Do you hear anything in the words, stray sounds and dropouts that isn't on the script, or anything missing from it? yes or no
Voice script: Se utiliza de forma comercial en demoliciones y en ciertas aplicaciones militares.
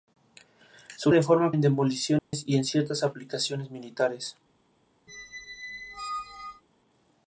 yes